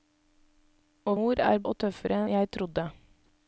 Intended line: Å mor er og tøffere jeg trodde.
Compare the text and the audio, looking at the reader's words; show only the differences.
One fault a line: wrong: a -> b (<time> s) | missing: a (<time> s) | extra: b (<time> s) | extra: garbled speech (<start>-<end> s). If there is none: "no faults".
no faults